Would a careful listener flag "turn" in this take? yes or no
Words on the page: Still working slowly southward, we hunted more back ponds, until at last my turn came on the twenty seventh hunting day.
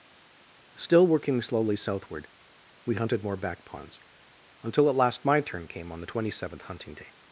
no